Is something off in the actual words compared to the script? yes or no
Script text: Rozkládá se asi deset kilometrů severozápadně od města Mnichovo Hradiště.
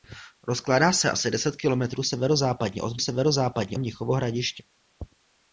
yes